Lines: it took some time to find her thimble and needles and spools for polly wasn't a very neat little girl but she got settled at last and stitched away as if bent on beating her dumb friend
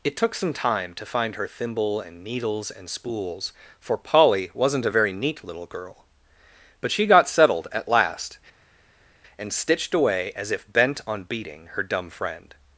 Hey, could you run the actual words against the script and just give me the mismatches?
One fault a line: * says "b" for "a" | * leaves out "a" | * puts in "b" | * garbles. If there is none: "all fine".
all fine